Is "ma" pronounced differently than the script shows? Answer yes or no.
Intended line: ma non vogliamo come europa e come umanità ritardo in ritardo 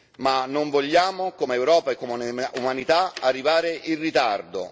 no